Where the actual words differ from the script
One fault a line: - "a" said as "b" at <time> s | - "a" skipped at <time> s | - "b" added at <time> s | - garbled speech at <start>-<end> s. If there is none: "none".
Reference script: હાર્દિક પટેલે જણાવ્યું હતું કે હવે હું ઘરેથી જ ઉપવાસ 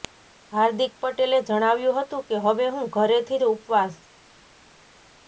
none